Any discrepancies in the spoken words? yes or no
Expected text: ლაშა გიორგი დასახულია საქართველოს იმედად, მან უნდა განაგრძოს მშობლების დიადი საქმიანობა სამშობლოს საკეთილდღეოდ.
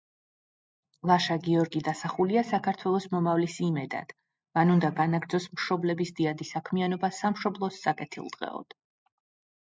yes